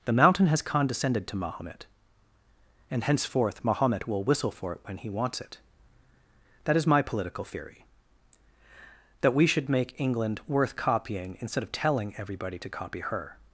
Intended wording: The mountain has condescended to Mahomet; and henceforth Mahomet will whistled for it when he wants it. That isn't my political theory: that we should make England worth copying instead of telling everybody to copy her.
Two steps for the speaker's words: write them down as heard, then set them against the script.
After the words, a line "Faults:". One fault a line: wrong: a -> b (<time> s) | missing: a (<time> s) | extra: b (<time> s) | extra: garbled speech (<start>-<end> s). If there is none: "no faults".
The mountain has condescended to Mahomet; and henceforth Mahomet will whistle for it when he wants it. That is my political theory: that we should make England worth copying instead of telling everybody to copy her.
Faults:
wrong: whistled -> whistle (4.2 s)
wrong: isn't -> is (6.8 s)